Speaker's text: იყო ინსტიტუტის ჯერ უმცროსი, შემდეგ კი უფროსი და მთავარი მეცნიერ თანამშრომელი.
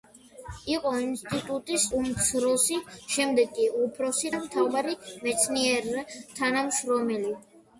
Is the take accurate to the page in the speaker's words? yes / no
no